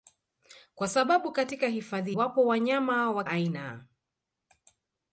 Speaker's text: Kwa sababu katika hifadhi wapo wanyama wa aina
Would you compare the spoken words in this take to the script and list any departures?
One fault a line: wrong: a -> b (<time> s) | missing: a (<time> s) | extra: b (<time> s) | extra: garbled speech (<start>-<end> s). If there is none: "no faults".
no faults